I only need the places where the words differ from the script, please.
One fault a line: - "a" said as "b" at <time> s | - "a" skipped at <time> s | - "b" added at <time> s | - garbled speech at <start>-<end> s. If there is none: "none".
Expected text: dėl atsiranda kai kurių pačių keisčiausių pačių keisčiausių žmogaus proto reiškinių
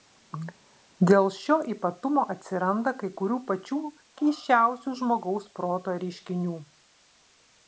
- "šio ypatumo" added at 1.4 s
- "pačių keisčiausių" skipped at 5.0 s